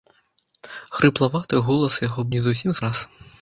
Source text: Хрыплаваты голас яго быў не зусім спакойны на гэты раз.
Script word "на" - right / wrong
wrong